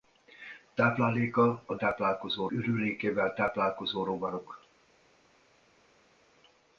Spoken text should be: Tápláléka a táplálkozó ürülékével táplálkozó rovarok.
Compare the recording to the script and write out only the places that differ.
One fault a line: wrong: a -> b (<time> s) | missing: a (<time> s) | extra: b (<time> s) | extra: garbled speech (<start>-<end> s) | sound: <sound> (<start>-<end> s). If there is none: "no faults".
no faults